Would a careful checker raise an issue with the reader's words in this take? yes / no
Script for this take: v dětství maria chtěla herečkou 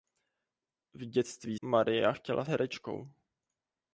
no